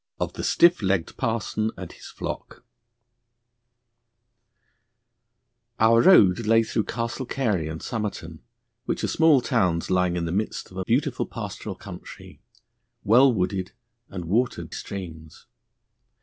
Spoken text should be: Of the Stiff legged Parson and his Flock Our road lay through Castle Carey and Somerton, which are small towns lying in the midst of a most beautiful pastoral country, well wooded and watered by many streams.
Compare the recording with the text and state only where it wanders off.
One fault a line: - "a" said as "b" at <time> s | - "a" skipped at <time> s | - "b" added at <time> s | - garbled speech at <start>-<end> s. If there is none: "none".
- "most" skipped at 10.8 s
- "by many" skipped at 14.7 s